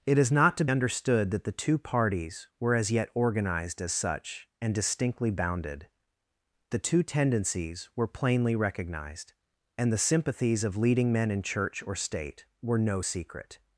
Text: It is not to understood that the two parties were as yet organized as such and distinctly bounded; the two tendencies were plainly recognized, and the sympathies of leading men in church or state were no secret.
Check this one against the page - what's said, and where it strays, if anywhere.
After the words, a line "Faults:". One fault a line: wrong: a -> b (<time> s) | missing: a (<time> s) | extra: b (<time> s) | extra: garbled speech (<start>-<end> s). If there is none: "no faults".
It is not to understood that the two parties were as yet organized as such and distinctly bounded; the two tendencies were plainly recognized, and the sympathies of leading men in church or state were no secret.
Faults:
no faults